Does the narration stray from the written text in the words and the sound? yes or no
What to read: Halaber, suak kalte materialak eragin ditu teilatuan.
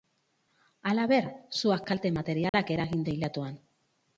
yes